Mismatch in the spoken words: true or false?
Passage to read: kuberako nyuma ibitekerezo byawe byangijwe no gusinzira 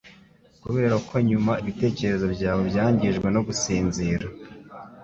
false